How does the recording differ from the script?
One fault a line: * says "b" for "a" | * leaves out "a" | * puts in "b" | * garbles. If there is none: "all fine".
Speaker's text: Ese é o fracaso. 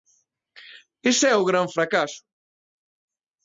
* puts in "gran"